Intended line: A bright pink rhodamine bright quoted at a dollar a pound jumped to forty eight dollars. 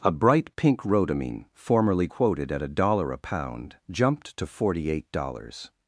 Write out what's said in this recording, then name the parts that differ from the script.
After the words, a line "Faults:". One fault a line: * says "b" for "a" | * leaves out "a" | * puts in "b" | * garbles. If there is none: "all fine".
A bright pink rhodamine formerly quoted at a dollar a pound jumped to forty eight dollars.
Faults:
* says "formerly" for "bright"